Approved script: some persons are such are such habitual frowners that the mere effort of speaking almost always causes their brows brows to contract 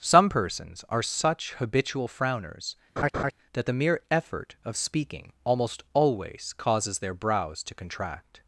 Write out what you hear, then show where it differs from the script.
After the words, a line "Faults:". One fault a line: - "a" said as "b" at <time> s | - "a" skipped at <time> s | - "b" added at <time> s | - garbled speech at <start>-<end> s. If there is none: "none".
some persons are such habitual frowners that the mere effort of speaking almost always causes their brows to contract
Faults:
- "are such" skipped at 1.5 s
- "brows" skipped at 7.6 s